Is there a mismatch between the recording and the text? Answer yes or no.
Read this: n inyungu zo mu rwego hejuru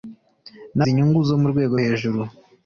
no